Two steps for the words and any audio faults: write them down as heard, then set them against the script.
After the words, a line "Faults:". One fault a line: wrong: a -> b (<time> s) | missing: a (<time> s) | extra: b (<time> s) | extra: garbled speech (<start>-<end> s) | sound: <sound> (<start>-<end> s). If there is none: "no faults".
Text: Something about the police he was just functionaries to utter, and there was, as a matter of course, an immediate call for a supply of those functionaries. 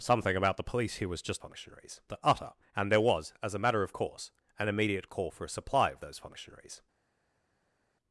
Something about the police he was just functionaries to utter, and there was, as a matter of course, an immediate call for a supply of those functionaries.
Faults:
no faults